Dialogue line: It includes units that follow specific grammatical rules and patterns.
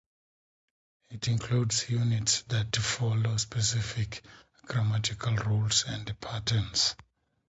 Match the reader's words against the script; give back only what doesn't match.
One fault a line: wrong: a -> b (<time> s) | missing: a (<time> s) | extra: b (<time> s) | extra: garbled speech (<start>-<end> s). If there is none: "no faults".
no faults